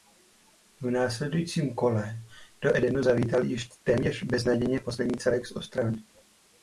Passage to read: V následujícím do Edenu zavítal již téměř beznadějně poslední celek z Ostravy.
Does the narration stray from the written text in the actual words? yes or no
yes